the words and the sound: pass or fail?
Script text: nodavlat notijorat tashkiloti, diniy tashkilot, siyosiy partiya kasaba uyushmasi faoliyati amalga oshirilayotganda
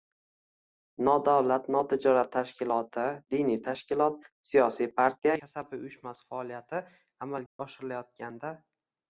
fail